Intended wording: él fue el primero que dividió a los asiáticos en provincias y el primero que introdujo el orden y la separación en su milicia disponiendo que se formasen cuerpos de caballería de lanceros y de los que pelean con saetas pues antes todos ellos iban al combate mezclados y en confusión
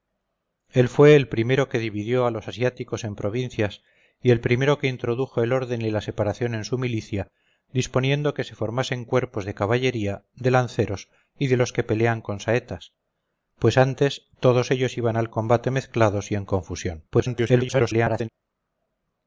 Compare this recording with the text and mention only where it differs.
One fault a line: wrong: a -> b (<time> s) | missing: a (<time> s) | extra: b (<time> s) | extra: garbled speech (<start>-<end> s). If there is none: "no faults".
extra: garbled speech (17.1-18.3 s)